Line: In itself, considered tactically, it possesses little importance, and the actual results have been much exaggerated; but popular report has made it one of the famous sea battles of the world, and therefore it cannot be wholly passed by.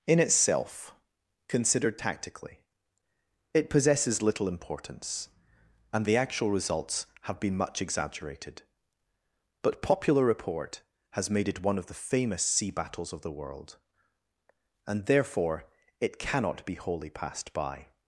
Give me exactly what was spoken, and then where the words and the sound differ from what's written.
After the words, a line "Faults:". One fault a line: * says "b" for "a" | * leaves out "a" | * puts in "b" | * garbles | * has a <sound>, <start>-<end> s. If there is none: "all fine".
In itself, considered tactically, it possesses little importance, and the actual results have been much exaggerated; but popular report has made it one of the famous sea battles of the world, and therefore it cannot be wholly passed by.
Faults:
all fine